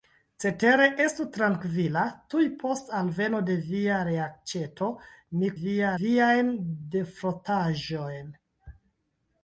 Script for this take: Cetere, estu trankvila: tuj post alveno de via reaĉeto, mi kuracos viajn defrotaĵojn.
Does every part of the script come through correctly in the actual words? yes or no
no